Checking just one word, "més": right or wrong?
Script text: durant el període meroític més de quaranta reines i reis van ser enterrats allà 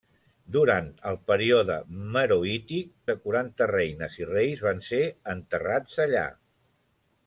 wrong